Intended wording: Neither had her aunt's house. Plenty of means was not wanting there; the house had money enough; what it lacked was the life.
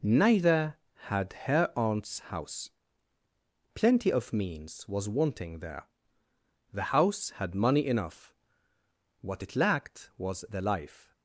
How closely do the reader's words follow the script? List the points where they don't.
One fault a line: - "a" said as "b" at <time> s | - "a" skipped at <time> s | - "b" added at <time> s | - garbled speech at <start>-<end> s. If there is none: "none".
- "not" skipped at 5.1 s